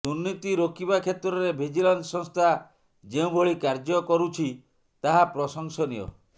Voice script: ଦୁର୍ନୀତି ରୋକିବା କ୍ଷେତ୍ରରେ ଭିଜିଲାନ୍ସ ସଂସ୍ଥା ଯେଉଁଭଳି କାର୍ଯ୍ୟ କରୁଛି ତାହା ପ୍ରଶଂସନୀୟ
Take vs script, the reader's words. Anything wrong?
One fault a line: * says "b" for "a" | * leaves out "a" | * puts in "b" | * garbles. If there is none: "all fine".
all fine